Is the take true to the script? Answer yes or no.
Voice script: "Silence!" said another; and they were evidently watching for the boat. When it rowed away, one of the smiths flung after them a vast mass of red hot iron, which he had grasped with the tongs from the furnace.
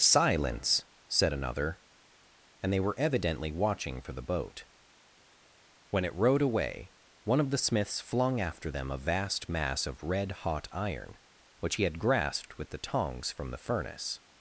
yes